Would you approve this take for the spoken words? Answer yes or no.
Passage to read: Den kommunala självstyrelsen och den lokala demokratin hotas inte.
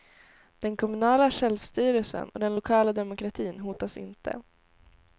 yes